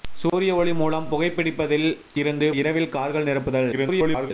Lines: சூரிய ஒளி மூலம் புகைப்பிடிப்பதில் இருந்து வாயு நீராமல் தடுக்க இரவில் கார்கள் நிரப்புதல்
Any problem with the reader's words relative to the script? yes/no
yes